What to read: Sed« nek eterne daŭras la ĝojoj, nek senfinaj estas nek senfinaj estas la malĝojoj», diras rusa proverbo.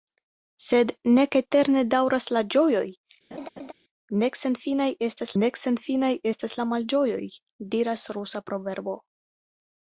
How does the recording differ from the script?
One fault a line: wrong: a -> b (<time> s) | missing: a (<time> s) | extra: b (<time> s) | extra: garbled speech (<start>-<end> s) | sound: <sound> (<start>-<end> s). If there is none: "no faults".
sound: laugh (3.3-3.7 s)